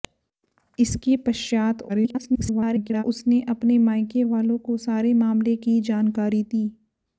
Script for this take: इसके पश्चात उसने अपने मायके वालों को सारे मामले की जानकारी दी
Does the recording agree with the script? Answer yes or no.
no